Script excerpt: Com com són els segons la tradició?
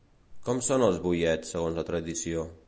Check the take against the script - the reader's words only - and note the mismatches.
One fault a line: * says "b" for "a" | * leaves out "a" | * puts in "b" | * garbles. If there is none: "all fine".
* leaves out "com"
* puts in "boiets"